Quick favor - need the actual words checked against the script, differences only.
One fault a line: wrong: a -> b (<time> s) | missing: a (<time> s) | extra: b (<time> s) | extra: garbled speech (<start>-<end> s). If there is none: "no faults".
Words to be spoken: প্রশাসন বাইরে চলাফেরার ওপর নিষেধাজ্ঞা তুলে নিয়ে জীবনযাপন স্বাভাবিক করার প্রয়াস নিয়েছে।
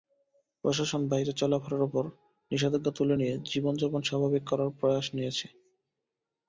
no faults